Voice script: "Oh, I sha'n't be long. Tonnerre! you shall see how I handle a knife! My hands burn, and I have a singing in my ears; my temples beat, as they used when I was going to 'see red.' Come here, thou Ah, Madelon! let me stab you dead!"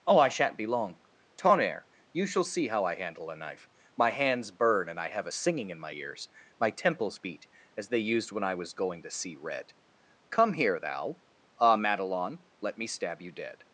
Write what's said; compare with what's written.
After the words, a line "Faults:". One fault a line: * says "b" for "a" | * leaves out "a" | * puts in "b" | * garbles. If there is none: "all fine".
"Oh, I sha'n't be long. Tonnerre! you shall see how I handle a knife! My hands burn, and I have a singing in my ears; my temples beat, as they used when I was going to 'see red.' Come here, thou Ah, Madelon! let me stab you dead!"
Faults:
all fine